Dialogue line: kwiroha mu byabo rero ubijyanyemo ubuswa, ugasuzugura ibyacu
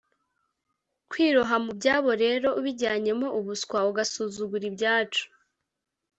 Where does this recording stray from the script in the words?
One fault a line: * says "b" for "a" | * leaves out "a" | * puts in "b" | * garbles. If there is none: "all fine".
all fine